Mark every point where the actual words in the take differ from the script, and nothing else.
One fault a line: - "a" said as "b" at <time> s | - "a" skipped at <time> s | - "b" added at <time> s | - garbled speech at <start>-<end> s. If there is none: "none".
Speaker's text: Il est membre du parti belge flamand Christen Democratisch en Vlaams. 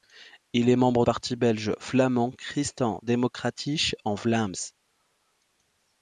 - "du" skipped at 1.1 s